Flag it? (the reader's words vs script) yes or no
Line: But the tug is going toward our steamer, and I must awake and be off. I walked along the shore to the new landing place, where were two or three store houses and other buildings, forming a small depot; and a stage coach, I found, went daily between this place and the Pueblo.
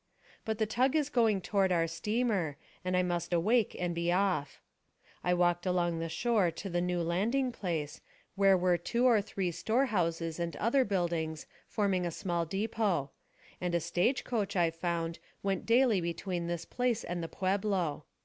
no